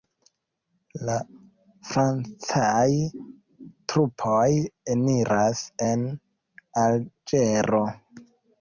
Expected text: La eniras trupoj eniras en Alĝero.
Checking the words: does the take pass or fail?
fail